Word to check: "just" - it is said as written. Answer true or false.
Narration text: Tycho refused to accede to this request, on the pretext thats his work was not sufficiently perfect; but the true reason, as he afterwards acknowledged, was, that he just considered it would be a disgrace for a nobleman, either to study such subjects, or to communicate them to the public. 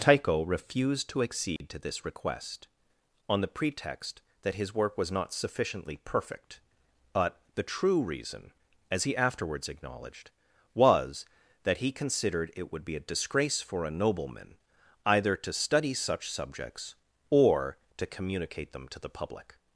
false